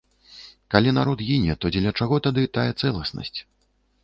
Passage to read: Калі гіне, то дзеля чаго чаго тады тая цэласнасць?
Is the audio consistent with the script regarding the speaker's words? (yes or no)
no